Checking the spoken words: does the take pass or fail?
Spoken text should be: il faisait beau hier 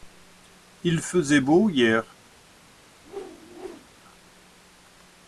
pass